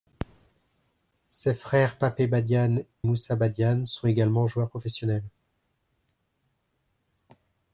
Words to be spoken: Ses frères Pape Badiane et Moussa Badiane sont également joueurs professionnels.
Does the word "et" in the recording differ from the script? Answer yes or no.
yes